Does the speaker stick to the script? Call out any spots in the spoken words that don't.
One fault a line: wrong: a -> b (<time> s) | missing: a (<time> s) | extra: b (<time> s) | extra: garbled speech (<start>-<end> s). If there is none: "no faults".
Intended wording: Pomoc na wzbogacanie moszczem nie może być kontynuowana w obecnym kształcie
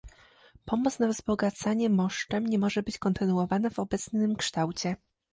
no faults